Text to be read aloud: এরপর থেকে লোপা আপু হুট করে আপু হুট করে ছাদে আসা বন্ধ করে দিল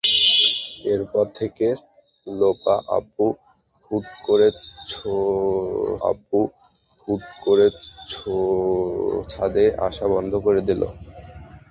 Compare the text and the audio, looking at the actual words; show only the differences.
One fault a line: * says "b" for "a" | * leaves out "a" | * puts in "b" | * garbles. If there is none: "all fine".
all fine